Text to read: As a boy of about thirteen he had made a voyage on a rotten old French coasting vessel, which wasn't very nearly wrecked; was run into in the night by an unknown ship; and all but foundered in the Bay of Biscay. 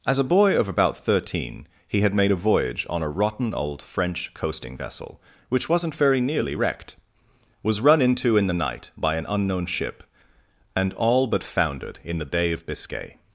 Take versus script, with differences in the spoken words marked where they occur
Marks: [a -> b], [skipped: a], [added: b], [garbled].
As a boy of about thirteen he had made a voyage on a rotten old French coasting vessel, which wasn't very nearly wrecked; was run into in the night by an unknown ship; and all but foundered in the Bay of Biscay.